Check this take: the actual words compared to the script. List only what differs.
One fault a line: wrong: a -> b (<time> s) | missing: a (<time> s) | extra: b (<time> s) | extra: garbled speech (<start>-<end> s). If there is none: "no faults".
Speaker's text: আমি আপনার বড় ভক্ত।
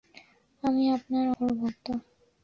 no faults